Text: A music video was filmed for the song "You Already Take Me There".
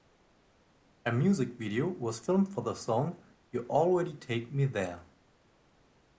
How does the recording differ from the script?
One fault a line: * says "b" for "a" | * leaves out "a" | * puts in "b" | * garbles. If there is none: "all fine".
all fine